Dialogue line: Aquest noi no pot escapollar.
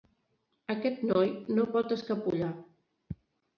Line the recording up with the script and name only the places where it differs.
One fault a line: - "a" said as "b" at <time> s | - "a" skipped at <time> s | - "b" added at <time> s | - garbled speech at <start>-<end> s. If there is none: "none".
none